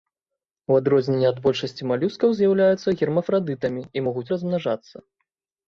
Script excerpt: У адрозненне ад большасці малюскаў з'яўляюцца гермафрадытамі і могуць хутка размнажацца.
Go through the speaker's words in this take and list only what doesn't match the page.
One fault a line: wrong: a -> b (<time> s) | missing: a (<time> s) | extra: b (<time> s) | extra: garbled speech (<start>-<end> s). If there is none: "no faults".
missing: хутка (4.2 s)